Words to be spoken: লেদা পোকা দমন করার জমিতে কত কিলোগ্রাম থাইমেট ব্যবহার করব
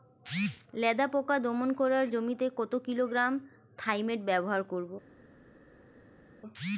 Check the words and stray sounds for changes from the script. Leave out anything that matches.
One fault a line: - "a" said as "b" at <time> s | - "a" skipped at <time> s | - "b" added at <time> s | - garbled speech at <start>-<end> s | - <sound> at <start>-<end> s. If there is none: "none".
none